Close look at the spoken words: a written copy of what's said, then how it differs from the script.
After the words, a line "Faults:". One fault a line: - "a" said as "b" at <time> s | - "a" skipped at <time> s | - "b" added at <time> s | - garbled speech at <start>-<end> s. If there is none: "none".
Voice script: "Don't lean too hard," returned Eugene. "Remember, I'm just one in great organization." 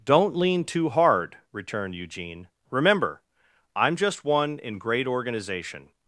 "Don't lean too hard," returned Eugene. "Remember, I'm just one in great organization."
Faults:
none